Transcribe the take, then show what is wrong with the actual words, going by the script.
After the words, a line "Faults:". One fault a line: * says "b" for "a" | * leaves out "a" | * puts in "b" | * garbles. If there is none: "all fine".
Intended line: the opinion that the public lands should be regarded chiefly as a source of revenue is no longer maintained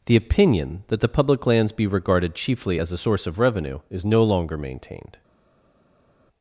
the opinion that the public lands be regarded chiefly as a source of revenue is no longer maintained
Faults:
* leaves out "should"